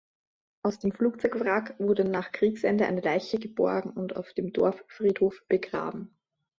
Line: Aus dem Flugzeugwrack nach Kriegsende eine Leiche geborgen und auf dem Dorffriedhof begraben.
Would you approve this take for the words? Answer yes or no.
no